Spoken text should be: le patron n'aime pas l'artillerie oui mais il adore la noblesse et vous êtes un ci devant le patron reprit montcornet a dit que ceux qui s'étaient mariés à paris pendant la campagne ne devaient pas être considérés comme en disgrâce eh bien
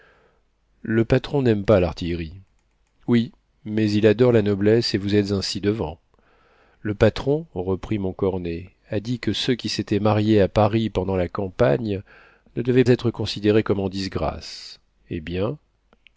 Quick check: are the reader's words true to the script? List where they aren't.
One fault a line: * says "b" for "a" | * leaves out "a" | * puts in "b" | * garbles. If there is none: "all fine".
* leaves out "pas"